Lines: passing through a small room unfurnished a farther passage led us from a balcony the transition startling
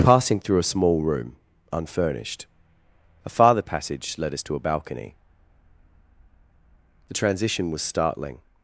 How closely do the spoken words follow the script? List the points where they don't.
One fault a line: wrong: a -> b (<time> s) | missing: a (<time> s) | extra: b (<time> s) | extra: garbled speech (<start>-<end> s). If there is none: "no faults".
wrong: from -> to (4.4 s)
extra: was (7.7 s)